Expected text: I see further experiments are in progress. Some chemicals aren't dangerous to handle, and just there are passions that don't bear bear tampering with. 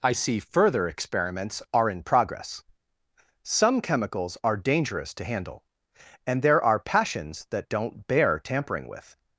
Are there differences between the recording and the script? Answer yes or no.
yes